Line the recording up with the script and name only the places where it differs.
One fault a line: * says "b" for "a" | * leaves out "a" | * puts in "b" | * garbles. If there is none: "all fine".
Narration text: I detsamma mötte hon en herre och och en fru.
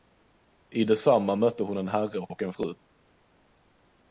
all fine